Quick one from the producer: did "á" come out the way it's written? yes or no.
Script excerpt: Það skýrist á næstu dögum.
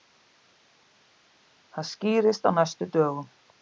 yes